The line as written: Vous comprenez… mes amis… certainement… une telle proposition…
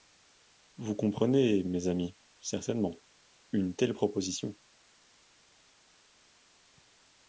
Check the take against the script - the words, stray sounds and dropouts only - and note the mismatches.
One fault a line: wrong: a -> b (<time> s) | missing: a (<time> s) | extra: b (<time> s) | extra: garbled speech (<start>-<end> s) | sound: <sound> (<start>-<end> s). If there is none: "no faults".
no faults